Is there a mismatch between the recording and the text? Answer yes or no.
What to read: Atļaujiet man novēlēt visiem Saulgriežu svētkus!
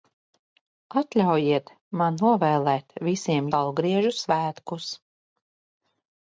no